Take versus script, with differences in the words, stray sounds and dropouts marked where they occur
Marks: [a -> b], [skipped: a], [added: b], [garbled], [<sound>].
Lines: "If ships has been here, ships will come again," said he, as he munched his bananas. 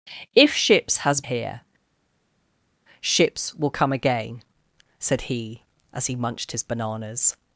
"If ships has [skipped: been] here, ships will come again," said he, as he munched his bananas.